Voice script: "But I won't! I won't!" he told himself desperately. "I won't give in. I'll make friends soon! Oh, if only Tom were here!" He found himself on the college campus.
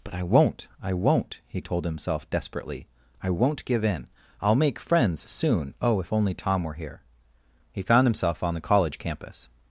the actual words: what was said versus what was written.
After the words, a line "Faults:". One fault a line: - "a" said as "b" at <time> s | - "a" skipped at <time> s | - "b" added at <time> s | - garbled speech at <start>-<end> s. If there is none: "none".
"But I won't! I won't!" he told himself desperately. "I won't give in. I'll make friends soon! Oh, if only Tom were here!" He found himself on the college campus.
Faults:
none